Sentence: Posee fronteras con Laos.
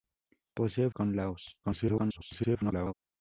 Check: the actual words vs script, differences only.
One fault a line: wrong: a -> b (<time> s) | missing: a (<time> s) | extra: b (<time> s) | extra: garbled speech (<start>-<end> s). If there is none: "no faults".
missing: fronteras (0.9 s)
extra: garbled speech (1.6-2.9 s)